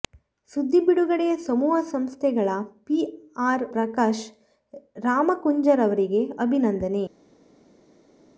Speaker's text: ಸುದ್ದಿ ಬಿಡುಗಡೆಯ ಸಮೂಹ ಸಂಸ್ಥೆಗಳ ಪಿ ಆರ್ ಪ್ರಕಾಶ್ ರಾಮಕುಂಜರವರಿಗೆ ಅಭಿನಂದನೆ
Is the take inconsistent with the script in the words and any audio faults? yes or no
no